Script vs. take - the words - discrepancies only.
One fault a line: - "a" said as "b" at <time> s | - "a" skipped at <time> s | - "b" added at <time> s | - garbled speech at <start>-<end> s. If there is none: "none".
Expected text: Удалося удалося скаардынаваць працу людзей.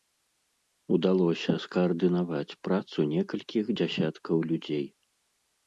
- "удалося" skipped at 1.5 s
- "некалькіх дзясяткаў" added at 3.1 s